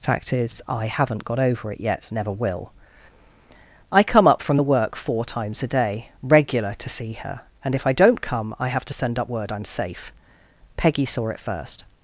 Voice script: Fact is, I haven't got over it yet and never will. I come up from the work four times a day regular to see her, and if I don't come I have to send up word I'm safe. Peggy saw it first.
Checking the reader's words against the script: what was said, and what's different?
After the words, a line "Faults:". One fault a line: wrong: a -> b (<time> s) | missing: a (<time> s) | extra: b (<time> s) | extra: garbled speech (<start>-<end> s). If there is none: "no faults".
Fact is, I haven't got over it yet never will. I come up from the work four times a day regular to see her, and if I don't come I have to send up word I'm safe. Peggy saw it first.
Faults:
missing: and (2.1 s)